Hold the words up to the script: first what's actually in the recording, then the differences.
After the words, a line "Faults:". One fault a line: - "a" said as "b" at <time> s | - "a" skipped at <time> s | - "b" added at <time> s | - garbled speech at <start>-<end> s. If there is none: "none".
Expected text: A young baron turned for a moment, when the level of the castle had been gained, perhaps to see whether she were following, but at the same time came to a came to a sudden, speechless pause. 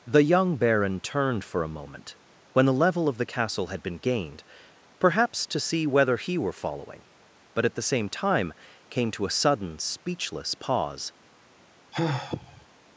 The young baron turned for a moment, when the level of the castle had been gained, perhaps to see whether he were following, but at the same time came to a sudden, speechless pause.
Faults:
- "A" said as "The" at 0.1 s
- "she" said as "he" at 6.2 s
- "came to a" skipped at 9.4 s